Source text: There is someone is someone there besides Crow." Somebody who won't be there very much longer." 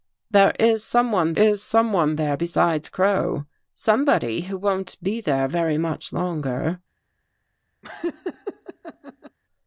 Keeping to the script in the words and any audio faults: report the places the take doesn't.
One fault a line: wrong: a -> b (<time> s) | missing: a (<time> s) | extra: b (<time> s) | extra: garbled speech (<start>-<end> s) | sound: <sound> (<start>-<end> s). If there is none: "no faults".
sound: laugh (7.8-9.4 s)